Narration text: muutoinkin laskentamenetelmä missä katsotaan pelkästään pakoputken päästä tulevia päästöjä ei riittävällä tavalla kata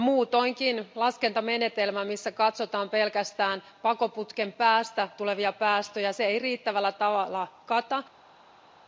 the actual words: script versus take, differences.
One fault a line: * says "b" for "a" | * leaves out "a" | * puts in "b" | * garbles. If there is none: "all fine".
all fine